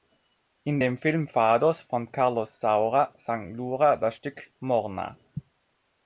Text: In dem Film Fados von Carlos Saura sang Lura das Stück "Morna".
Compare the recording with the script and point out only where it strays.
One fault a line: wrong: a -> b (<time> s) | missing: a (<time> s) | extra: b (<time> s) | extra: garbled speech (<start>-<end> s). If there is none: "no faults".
no faults